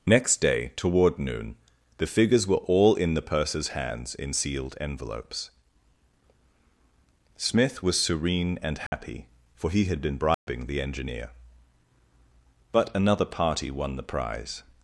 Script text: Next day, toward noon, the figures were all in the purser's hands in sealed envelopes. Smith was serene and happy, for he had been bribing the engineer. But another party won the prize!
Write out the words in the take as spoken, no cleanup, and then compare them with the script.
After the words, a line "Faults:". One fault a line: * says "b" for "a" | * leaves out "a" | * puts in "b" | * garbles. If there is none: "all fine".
Next day, toward noon, the figures were all in the purser's hands in sealed envelopes. Smith was serene and happy, for he had been bribing the engineer. But another party won the prize!
Faults:
all fine